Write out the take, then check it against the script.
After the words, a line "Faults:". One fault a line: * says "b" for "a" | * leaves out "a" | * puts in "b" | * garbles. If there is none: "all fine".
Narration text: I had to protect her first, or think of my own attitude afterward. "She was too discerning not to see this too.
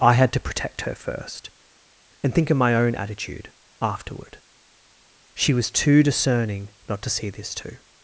I had to protect her first, and think of my own attitude afterward. "She was too discerning not to see this too.
Faults:
* says "and" for "or"